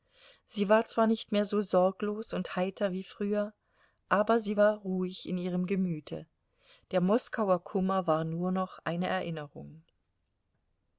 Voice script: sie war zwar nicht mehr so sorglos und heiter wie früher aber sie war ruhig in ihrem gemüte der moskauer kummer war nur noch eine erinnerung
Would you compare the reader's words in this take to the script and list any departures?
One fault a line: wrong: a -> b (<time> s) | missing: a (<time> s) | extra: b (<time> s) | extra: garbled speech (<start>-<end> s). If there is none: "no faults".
no faults